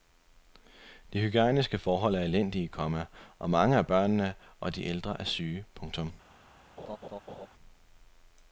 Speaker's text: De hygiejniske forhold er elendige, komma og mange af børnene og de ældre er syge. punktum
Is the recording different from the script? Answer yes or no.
no